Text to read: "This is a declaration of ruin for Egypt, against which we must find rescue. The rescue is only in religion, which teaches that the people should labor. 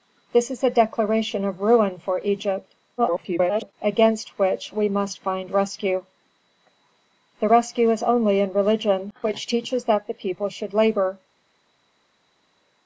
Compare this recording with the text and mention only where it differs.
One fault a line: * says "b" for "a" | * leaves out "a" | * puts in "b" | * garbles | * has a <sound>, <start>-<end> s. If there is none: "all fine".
* garbles